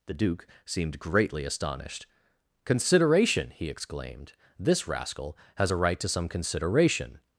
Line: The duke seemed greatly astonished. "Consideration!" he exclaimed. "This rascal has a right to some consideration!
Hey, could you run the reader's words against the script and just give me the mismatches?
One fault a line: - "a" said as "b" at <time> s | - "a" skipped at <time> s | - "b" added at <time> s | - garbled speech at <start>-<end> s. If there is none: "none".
none